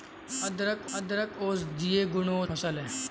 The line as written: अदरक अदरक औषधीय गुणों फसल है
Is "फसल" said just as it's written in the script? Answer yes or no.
yes